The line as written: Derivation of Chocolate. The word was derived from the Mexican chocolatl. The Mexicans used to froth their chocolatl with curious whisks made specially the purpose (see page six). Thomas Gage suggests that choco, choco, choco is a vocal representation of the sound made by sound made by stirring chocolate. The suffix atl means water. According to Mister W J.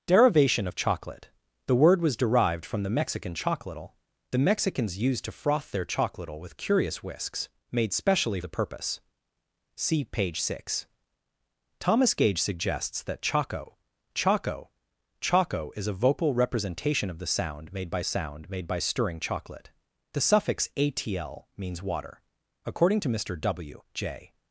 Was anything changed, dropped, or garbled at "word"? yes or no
no